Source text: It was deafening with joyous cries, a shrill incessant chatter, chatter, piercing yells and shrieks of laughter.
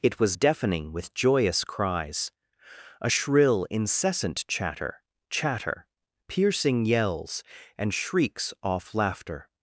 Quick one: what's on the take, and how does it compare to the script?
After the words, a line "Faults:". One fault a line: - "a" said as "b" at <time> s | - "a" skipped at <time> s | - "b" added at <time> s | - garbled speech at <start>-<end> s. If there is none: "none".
It was deafening with joyous cries, a shrill incessant chatter, chatter, piercing yells and shrieks off laughter.
Faults:
- "of" said as "off" at 8.6 s